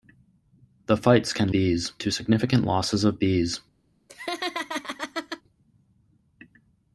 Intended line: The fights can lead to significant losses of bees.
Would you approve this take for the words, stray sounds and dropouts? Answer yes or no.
no